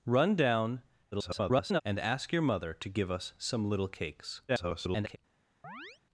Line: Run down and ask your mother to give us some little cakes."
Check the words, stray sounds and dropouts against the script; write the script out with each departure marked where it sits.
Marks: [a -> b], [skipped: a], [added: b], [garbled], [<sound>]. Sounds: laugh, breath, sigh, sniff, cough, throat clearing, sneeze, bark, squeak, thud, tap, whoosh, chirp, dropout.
Run down [garbled] and ask your mother to give us some little cakes." [garbled] [chirp]